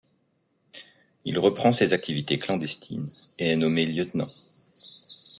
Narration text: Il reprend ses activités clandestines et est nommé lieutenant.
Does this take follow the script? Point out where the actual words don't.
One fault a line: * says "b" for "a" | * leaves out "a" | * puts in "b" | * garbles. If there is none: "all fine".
all fine